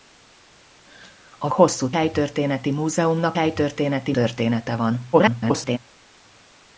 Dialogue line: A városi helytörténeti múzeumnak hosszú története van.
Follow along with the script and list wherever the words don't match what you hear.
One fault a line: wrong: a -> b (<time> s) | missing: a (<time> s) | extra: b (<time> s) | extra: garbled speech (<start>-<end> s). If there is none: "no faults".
wrong: városi -> hosszú (1.5 s)
wrong: hosszú -> helytörténeti (3.3 s)
extra: garbled speech (5.1-5.8 s)